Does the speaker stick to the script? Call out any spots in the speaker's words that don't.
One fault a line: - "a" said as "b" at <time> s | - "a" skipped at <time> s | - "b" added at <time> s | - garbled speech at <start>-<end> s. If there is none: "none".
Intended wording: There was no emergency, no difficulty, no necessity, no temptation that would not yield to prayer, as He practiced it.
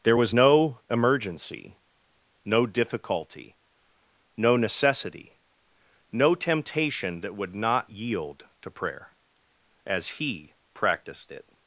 none